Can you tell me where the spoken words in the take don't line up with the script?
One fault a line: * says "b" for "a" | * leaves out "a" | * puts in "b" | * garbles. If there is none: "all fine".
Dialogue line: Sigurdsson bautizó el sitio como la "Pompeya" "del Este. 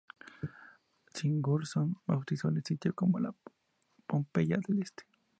all fine